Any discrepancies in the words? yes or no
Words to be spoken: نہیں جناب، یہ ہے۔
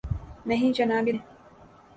no